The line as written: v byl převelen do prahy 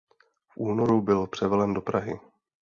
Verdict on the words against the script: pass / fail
fail